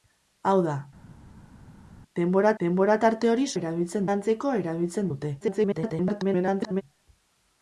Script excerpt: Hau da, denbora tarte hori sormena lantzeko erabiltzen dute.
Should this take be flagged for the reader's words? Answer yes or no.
yes